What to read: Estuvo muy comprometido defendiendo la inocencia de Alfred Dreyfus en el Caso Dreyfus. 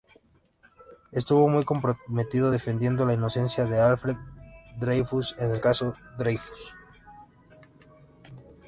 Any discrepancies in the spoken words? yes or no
no